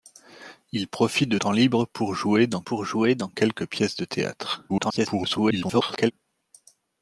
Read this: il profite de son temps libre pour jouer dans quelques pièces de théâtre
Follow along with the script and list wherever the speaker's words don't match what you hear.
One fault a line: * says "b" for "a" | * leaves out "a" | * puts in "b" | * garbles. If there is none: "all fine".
* leaves out "son"
* puts in "pour jouer dans"
* garbles